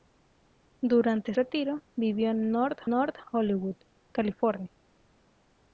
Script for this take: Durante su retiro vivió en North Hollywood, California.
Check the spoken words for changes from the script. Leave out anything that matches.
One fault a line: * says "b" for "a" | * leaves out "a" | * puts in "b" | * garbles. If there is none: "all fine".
* leaves out "su"
* puts in "North"